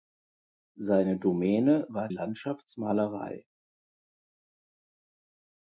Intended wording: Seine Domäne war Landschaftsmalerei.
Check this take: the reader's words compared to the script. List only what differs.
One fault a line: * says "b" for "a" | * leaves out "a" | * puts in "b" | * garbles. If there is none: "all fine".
all fine